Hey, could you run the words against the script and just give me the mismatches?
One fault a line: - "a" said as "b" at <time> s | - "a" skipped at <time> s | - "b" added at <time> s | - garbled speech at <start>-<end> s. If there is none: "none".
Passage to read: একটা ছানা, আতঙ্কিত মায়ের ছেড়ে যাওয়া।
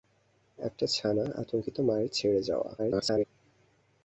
- garbled speech at 2.8-3.2 s